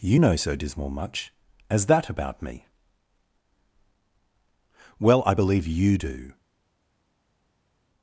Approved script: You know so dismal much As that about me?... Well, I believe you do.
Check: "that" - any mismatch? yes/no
no